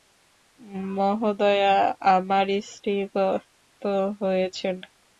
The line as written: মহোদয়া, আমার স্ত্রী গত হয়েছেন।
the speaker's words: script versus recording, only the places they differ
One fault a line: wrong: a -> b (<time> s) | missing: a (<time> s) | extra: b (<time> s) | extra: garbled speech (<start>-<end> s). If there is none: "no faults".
no faults